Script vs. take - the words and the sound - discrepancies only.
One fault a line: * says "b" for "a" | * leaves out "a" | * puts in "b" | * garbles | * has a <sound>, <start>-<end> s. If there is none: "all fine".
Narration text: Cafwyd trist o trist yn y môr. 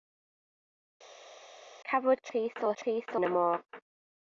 all fine